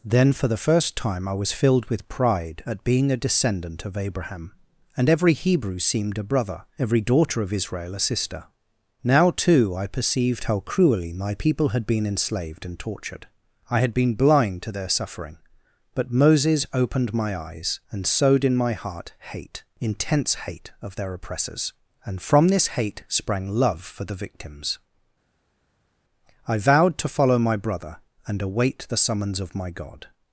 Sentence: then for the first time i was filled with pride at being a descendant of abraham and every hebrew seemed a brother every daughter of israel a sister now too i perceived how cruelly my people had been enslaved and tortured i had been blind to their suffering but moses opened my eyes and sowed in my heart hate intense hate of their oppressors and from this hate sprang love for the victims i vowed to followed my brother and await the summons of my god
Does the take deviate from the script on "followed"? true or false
true